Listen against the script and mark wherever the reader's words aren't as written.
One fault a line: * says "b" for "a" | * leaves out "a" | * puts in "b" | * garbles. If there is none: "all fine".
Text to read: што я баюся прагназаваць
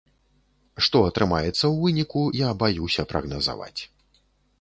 * puts in "атрымаецца ў выніку"